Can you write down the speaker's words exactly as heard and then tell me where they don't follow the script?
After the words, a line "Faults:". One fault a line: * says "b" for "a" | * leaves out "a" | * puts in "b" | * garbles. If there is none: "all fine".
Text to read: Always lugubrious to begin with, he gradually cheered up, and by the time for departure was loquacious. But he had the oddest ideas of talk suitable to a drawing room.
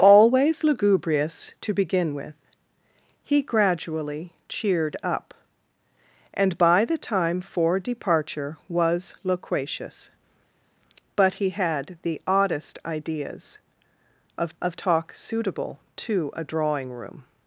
Always lugubrious to begin with, he gradually cheered up, and by the time for departure was loquacious. But he had the oddest ideas of of talk suitable to a drawing room.
Faults:
* puts in "of"